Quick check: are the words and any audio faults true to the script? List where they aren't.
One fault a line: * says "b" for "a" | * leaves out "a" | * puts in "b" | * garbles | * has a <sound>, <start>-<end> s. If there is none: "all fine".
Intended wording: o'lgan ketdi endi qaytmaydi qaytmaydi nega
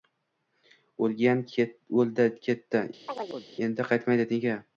* puts in "o'ldi"
* has a chirp, 3.1-3.5 s
* leaves out "qaytmaydi"